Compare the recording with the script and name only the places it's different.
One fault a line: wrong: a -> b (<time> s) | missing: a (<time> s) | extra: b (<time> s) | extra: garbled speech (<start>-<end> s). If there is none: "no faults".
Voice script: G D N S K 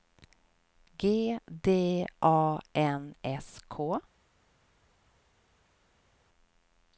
extra: A (2.2 s)